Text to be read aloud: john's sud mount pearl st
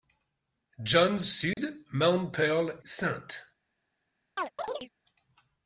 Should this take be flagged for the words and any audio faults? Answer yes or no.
yes